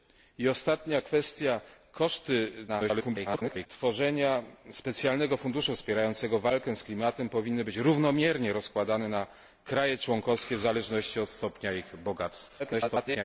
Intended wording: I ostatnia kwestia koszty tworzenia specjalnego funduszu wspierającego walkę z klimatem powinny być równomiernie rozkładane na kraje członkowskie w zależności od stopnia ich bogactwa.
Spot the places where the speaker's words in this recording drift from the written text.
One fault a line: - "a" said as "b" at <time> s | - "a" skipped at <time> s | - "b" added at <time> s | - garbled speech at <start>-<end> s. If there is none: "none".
- garbled speech at 2.7-3.7 s
- garbled speech at 12.6-13.2 s